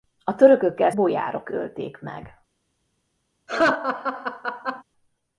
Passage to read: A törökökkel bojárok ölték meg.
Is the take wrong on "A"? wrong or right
right